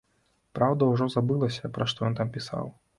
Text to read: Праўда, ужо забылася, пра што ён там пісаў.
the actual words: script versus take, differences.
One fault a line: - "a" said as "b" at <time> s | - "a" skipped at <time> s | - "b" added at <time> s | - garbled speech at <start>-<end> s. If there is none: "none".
none